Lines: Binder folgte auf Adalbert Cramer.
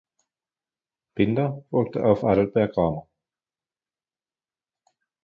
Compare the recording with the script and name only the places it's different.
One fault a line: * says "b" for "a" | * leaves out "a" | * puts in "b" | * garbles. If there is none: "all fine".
all fine